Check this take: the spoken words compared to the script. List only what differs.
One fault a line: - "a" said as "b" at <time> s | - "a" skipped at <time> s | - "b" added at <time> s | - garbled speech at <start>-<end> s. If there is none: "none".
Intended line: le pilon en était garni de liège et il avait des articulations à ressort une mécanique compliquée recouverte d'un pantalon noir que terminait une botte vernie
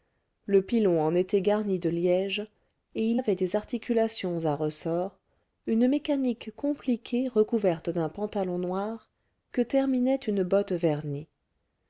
none